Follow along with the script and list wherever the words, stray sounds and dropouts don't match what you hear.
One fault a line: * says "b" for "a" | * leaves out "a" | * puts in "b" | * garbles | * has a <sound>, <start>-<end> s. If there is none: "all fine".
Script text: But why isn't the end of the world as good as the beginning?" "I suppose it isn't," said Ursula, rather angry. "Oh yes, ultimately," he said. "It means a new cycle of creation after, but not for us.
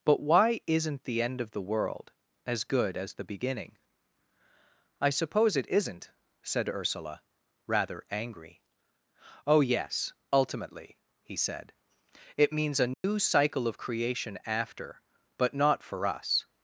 * has a dropout, 12.9-13.0 s